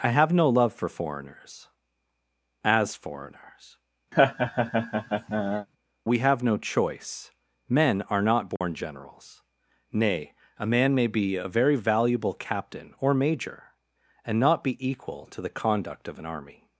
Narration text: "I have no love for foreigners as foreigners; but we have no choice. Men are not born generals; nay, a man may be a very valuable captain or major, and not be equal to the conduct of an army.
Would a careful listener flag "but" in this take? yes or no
yes